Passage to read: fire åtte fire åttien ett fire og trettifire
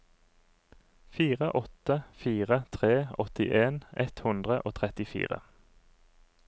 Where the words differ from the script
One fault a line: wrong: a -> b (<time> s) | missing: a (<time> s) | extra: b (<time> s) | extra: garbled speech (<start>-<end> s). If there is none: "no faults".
extra: tre (2.8 s)
wrong: fire -> hundre (4.3 s)